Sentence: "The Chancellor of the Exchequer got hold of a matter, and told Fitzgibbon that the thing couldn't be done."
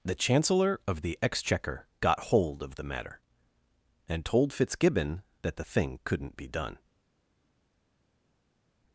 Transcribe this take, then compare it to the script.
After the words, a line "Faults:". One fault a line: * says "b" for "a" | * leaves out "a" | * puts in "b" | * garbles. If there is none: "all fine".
"The Chancellor of the Exchequer got hold of the matter, and told Fitzgibbon that the thing couldn't be done."
Faults:
* says "the" for "a"